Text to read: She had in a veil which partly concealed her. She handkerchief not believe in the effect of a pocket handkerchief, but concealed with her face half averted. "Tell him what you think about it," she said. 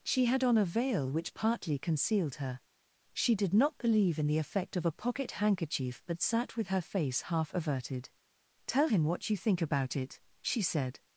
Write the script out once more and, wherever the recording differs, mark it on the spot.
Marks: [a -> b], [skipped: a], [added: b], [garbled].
She had [in -> on] a veil which partly concealed her. She [handkerchief -> did] not believe in the effect of a pocket handkerchief, but [concealed -> sat] with her face half averted. "Tell him what you think about it," she said.